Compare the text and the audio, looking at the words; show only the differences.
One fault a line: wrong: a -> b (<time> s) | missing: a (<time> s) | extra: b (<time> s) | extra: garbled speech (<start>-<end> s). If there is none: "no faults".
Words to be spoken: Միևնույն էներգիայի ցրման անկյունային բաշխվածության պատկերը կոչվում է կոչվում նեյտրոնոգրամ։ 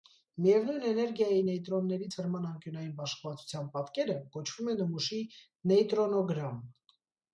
extra: նեյտրոնների (1.5 s)
wrong: կոչվում -> նմուշի (4.8 s)